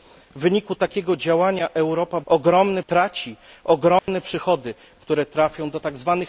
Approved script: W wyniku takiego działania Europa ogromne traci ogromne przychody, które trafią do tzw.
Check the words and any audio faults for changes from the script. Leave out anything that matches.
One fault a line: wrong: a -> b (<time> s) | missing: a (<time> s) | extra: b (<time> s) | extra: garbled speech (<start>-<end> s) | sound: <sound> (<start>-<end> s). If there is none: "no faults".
sound: dropout (4.0-4.1 s)